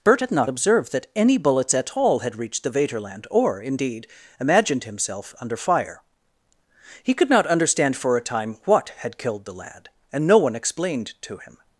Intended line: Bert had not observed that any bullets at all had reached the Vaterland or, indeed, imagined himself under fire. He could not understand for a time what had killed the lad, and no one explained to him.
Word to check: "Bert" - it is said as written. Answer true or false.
true